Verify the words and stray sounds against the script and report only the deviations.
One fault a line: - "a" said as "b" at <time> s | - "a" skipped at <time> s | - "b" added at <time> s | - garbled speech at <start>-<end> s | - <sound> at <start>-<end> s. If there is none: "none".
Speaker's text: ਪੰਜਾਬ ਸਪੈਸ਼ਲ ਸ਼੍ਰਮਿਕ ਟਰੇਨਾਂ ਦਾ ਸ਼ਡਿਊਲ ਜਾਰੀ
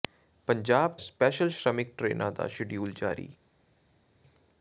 none